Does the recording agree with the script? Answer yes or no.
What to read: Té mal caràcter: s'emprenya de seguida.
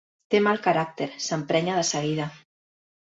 yes